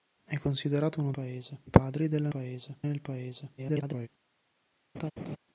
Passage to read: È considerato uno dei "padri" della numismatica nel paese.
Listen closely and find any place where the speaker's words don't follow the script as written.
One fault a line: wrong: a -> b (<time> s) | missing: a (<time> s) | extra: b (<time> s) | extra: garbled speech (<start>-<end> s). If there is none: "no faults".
wrong: dei -> paese (1.1 s)
wrong: numismatica -> paese (2.3 s)
extra: garbled speech (3.6-4.1 s)